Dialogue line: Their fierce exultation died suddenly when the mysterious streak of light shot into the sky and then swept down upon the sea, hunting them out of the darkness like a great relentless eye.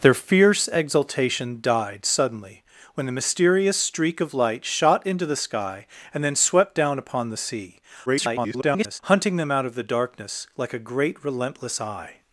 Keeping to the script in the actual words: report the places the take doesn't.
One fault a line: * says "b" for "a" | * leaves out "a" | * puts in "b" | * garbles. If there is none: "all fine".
* garbles